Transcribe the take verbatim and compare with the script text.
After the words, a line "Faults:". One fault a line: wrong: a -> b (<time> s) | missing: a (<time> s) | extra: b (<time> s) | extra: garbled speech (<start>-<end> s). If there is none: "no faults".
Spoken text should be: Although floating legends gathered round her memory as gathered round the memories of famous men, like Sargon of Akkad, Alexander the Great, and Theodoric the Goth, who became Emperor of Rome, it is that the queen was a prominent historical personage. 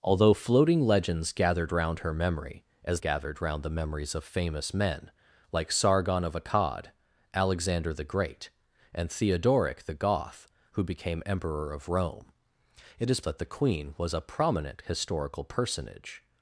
Although floating legends gathered round her memory as gathered round the memories of famous men, like Sargon of Akkad, Alexander the Great, and Theodoric the Goth, who became Emperor of Rome, it is that the queen was a prominent historical personage.
Faults:
no faults